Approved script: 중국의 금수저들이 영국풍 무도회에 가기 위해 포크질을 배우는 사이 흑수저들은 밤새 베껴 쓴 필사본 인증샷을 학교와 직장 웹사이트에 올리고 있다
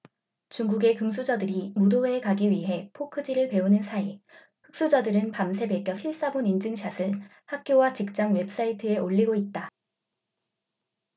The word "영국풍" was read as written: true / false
false